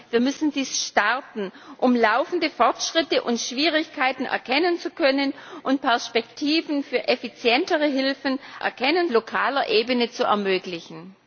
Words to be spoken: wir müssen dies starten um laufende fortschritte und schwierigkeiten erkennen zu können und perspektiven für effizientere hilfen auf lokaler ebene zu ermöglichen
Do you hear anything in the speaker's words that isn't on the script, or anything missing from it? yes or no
yes